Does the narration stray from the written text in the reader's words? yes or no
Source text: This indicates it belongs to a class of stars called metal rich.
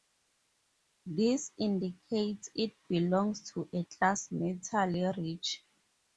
yes